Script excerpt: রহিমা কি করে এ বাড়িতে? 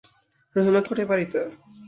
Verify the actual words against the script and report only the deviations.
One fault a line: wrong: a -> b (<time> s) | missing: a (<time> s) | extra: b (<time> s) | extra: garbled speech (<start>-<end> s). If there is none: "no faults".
no faults